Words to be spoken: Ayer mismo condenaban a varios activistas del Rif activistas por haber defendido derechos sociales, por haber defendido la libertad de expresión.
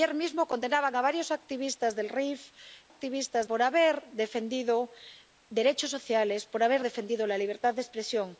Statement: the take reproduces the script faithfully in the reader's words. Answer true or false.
true